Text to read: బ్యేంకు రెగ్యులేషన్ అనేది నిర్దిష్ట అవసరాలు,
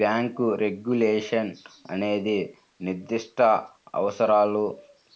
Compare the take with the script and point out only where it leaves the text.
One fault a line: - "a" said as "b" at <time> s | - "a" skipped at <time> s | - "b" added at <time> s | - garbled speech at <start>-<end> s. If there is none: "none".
none